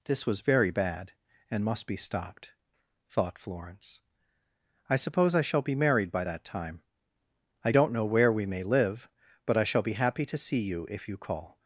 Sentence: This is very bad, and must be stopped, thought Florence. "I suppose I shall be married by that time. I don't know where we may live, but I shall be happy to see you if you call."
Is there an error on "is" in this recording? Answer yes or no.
yes